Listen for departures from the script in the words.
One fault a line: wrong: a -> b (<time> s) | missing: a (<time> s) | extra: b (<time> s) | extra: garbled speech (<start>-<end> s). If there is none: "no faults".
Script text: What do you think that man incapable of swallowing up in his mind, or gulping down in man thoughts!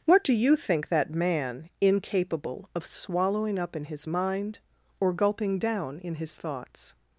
wrong: man -> his (6.1 s)